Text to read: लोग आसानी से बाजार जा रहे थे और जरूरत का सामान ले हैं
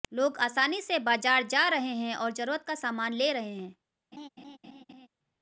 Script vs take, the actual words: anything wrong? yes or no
yes